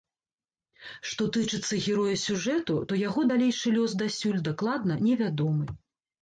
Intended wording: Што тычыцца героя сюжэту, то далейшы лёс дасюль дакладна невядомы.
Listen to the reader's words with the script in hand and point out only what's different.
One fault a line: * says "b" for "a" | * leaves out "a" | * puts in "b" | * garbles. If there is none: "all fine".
* puts in "яго"